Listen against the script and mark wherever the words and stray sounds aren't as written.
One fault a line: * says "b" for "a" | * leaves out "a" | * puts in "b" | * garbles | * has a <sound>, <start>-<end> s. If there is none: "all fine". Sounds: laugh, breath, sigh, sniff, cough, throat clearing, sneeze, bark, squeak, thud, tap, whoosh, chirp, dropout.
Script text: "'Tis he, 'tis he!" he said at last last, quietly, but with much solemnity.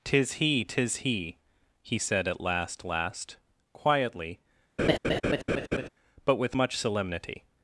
* has a laugh, 4.8-5.9 s